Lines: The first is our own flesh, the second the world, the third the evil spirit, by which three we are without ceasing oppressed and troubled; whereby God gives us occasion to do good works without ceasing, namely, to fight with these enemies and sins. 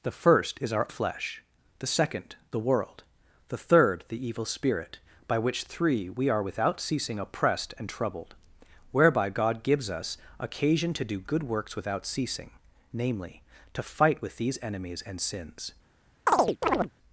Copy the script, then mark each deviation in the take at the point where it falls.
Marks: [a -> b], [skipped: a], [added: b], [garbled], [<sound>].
The first is our [skipped: own] flesh, the second the world, the third the evil spirit, by which three we are without ceasing oppressed and troubled; whereby God gives us occasion to do good works without ceasing, namely, to fight with these enemies and sins. [chirp]